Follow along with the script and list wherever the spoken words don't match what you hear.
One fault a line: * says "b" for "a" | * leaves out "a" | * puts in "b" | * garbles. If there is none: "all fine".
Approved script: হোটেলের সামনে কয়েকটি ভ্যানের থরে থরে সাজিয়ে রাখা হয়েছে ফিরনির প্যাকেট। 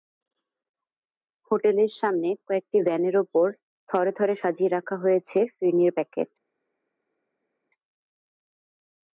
* puts in "ওপর"